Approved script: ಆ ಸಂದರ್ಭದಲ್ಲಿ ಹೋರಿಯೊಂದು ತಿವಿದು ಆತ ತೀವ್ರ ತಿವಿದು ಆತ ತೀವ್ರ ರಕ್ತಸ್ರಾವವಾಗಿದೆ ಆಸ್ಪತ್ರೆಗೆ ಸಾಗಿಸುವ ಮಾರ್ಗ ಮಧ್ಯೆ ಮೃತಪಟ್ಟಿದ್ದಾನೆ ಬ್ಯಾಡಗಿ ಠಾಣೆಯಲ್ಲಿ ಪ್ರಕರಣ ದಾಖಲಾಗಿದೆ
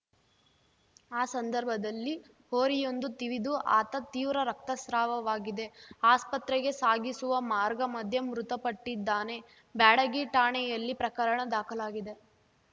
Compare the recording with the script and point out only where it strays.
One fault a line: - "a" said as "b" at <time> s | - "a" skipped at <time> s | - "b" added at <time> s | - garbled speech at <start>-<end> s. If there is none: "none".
- "ತಿವಿದು ಆತ ತೀವ್ರ" skipped at 4.4 s